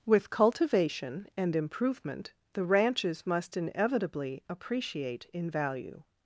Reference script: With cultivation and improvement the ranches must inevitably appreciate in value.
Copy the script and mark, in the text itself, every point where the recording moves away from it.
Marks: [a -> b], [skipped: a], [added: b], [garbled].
With cultivation and improvement the ranches must inevitably appreciate in value.